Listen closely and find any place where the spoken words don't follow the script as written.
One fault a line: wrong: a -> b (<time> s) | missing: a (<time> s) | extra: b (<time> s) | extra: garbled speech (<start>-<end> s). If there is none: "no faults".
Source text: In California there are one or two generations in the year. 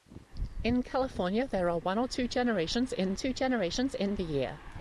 extra: two generations in (3.1 s)